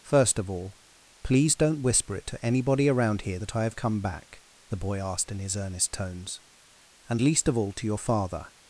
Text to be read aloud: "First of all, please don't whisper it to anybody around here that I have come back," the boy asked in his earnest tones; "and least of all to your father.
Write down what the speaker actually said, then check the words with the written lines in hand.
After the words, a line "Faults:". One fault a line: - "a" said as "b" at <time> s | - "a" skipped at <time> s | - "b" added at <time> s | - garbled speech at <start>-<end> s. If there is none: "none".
"First of all, please don't whisper it to anybody around here that I have come back," the boy asked in his earnest tones; "and least of all to your father.
Faults:
none